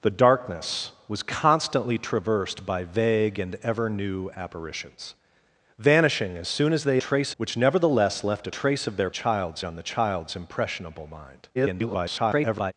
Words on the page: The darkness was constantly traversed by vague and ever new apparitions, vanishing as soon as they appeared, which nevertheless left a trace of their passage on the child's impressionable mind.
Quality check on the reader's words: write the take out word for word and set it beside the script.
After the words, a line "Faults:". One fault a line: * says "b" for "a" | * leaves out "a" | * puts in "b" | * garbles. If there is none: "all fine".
The darkness was constantly traversed by vague and ever new apparitions, vanishing as soon as they trace, which nevertheless left a trace of their child's on the child's impressionable mind. [garbled]
Faults:
* says "trace" for "appeared"
* says "child's" for "passage"
* garbles